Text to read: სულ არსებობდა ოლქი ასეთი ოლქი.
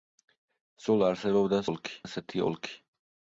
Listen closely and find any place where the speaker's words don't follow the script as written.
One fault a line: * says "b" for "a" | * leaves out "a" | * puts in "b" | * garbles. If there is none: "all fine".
all fine